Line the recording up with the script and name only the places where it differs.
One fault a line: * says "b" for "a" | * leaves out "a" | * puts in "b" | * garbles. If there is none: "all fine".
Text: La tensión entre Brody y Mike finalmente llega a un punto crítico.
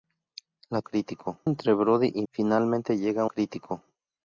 * says "crítico" for "tensión"
* leaves out "Mike"
* leaves out "un punto"